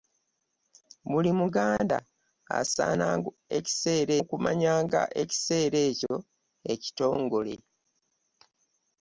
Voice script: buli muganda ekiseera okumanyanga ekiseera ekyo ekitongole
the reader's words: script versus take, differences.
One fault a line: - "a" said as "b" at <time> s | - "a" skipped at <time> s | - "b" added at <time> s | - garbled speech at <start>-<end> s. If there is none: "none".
none